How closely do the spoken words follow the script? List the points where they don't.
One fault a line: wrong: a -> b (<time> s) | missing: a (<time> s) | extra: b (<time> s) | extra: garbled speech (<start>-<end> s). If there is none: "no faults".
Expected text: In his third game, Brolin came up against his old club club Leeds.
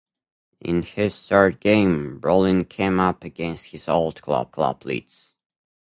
no faults